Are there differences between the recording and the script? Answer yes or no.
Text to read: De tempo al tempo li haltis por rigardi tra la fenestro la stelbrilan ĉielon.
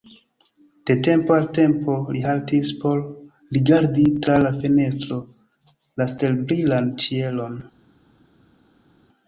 no